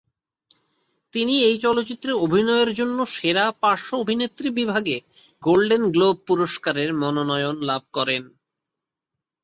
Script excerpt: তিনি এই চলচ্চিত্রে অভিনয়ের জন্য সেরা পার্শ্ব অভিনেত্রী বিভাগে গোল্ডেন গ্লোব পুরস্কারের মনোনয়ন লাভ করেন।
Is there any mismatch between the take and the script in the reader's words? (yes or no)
no